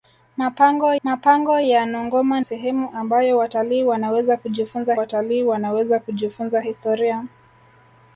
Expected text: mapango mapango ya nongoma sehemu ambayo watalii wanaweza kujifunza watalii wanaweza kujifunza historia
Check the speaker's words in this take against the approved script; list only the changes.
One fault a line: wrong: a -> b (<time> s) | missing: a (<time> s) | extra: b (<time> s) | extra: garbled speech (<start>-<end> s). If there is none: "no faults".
no faults